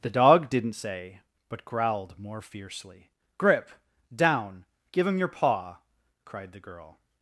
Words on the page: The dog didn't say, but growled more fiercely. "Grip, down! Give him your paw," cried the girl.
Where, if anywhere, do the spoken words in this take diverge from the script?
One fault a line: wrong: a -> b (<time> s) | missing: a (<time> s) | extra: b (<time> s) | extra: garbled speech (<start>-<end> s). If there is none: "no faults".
no faults